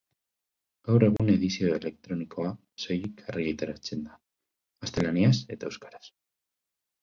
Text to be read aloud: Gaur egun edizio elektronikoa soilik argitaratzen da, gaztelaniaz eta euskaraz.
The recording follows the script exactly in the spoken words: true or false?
true